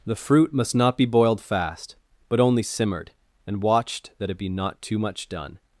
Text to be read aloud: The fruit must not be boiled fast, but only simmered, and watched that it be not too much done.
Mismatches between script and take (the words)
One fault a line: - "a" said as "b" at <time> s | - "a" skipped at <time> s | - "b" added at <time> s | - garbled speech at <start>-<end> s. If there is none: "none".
none